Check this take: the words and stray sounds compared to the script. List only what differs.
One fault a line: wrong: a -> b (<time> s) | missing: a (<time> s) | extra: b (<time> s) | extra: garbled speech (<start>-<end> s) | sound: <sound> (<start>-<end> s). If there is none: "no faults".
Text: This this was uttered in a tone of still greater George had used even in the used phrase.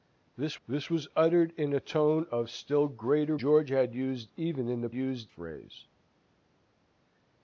no faults